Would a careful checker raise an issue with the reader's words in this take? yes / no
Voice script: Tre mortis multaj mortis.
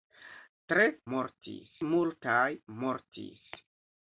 no